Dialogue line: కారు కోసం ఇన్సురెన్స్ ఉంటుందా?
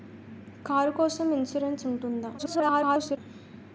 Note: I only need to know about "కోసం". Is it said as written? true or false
true